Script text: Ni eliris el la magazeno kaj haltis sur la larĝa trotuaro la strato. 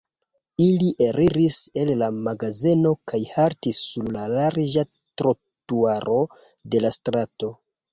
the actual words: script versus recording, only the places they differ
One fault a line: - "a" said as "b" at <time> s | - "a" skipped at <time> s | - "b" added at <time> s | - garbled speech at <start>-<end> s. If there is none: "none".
- "Ni" said as "Ili" at 0.7 s
- "de" added at 6.8 s